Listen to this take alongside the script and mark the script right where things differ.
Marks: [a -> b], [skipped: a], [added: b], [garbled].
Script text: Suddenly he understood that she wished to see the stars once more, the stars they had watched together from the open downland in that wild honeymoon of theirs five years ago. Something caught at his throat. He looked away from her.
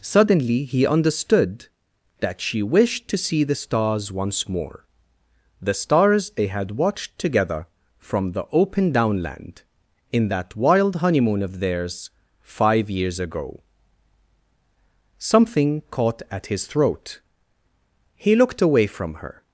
Suddenly he understood that she wished to see the stars once more, the stars they had watched together from the open downland in that wild honeymoon of theirs five years ago. Something caught at his throat. He looked away from her.